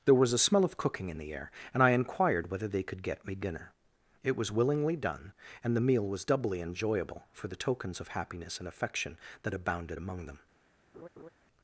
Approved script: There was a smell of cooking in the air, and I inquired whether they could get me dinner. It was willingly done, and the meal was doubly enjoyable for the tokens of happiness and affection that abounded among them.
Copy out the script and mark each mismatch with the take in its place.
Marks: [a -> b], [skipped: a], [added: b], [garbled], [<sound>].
There was a smell of cooking in the air, and I inquired whether they could get me dinner. It was willingly done, and the meal was doubly enjoyable for the tokens of happiness and affection that abounded among them. [laugh]